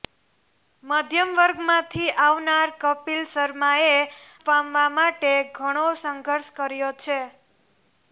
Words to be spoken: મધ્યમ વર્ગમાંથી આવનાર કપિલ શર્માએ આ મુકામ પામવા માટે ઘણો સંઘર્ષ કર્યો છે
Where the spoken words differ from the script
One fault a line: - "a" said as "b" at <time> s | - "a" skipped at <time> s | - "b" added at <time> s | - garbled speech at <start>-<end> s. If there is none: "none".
- "આ મુકામ" skipped at 4.0 s